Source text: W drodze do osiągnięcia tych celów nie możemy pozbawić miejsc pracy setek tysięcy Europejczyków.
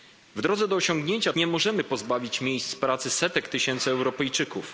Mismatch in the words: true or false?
true